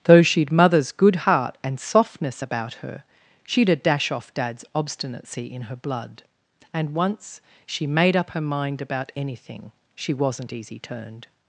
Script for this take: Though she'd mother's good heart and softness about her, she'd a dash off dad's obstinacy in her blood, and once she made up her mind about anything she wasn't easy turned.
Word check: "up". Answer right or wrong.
right